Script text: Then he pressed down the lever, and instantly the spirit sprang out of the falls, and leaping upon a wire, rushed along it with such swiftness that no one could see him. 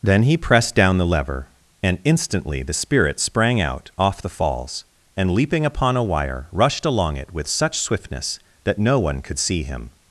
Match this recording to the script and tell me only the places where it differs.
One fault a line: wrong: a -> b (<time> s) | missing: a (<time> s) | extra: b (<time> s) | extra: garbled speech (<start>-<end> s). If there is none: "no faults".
wrong: of -> off (4.0 s)